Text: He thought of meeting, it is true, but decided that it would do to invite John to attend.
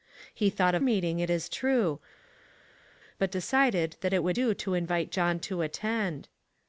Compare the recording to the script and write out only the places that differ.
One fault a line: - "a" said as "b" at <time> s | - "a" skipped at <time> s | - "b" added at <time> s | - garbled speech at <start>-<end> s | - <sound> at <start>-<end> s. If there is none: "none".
none